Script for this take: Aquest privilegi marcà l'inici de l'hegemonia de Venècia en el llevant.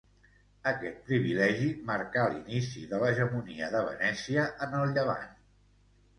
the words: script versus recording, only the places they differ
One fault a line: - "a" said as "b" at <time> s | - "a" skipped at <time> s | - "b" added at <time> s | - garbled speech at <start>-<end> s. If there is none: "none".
none